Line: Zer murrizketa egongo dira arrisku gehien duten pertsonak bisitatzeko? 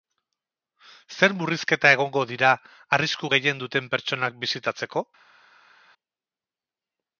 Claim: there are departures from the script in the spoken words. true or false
false